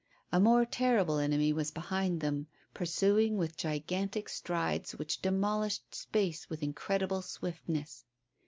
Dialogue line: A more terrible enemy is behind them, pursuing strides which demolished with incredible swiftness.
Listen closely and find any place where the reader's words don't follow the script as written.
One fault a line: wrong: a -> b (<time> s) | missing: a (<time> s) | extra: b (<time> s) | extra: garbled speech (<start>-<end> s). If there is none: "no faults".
wrong: is -> was (1.5 s)
extra: with gigantic (3.4 s)
extra: space (5.9 s)